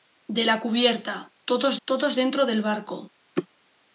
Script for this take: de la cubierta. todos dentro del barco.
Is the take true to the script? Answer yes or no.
no